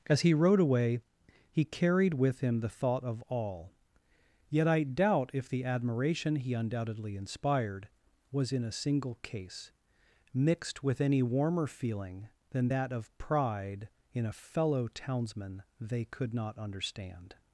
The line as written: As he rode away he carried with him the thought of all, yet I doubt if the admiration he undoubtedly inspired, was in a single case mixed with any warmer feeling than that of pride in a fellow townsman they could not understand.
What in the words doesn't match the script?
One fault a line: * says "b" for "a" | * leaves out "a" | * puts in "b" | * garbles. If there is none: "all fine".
all fine